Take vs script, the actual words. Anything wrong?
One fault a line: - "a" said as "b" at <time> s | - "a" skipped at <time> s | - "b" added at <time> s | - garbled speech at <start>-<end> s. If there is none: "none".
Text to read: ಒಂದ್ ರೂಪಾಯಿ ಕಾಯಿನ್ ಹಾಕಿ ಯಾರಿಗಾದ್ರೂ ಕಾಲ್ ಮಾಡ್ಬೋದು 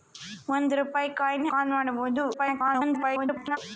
- "ಹಾಕಿ ಯಾರಿಗಾದ್ರೂ" skipped at 1.5 s
- garbled speech at 2.3-3.6 s